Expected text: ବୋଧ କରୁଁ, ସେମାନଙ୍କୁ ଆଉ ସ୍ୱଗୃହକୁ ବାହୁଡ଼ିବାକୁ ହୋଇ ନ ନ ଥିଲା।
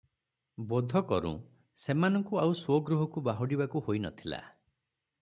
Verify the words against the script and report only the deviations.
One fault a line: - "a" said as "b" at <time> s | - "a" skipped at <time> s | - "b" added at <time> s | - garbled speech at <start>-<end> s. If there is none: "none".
- "ନ" skipped at 4.1 s